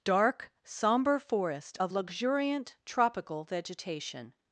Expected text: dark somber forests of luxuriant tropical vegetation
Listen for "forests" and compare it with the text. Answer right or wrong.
wrong